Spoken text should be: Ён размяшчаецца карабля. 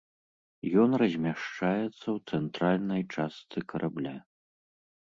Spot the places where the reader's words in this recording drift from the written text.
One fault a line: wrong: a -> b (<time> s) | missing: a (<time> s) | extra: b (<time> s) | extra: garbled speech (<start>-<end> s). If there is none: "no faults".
extra: ў цэнтральнай частцы (1.9 s)